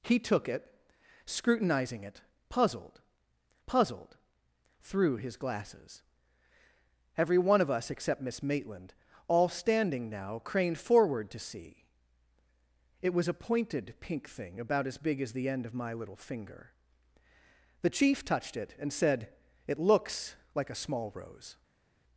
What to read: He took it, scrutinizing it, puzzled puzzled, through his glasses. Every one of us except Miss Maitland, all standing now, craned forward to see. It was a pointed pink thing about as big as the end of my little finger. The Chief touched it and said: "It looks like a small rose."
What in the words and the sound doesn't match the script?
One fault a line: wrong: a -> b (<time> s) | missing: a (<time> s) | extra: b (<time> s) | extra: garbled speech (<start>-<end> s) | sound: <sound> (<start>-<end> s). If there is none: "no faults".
no faults